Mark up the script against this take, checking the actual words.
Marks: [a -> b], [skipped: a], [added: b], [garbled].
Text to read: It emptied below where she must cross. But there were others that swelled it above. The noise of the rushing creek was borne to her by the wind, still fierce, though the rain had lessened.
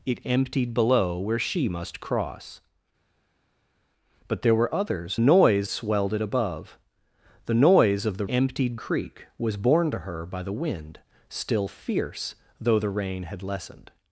It emptied below where she must cross. But there were others [that -> noise] swelled it above. The noise of the [rushing -> emptied] creek was borne to her by the wind, still fierce, though the rain had lessened.